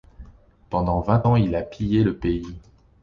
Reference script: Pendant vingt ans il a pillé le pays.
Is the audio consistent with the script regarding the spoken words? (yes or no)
yes